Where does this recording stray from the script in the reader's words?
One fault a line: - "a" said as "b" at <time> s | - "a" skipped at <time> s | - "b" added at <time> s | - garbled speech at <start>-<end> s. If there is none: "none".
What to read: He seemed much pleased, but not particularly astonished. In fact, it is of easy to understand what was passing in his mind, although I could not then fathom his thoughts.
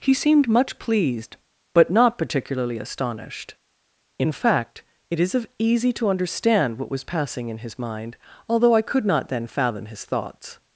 none